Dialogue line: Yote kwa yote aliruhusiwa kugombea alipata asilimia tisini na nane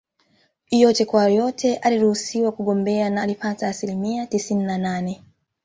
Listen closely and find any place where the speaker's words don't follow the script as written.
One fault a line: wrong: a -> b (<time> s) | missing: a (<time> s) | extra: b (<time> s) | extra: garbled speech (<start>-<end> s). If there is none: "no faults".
extra: na (3.1 s)